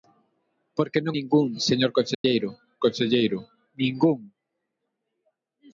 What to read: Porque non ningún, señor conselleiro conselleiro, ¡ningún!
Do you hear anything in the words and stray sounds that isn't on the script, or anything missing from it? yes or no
yes